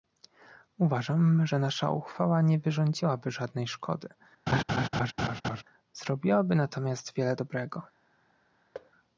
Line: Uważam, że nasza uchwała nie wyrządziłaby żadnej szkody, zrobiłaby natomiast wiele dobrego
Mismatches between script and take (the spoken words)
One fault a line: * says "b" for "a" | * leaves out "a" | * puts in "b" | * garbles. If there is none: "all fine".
all fine